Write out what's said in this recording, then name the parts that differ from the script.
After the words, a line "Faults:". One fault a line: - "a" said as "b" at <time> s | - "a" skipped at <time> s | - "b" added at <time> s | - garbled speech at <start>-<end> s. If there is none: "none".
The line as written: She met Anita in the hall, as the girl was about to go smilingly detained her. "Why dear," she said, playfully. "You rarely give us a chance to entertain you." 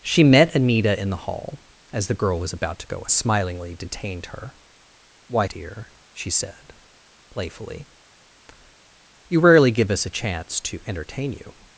She met Anita in the hall, as the girl was about to go smilingly detained her. "Why dear," she said, playfully. "You rarely give us a chance to entertain you."
Faults:
none